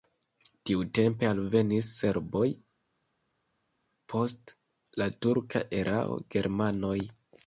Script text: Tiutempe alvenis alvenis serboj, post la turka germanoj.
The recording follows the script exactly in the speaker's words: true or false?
false